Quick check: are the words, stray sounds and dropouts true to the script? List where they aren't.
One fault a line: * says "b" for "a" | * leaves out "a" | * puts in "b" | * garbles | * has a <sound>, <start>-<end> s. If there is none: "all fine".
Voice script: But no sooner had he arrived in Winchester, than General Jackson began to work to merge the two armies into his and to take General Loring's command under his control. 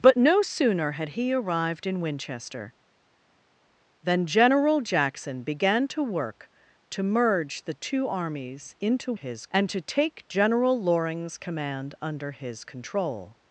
all fine